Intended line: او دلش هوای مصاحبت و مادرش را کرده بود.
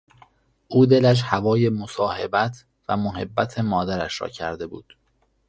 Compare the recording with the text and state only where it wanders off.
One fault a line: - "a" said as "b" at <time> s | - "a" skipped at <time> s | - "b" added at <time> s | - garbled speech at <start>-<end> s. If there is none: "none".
- "محبت" added at 3.0 s